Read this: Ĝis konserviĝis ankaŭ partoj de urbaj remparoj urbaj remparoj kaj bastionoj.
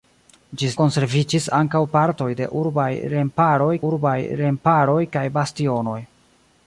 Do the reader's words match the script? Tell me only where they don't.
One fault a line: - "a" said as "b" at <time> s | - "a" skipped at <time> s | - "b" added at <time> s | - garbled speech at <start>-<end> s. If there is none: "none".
none